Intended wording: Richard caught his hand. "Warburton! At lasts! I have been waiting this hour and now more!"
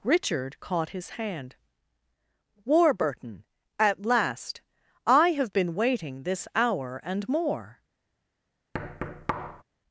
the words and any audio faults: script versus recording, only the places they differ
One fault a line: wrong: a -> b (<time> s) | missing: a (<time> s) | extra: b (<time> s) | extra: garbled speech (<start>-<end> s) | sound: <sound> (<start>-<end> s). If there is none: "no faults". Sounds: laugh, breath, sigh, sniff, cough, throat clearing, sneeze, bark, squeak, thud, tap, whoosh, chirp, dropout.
wrong: lasts -> last (4.1 s)
missing: now (7.3 s)
sound: thud (8.7-9.6 s)